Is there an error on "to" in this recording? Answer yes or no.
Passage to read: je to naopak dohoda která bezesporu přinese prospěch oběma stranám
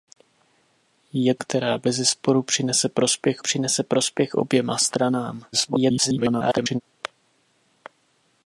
yes